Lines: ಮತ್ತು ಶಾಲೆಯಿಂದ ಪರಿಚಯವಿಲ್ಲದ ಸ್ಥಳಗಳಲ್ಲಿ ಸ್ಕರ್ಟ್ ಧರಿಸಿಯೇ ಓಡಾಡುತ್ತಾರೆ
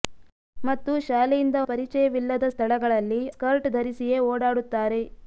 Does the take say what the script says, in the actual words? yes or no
yes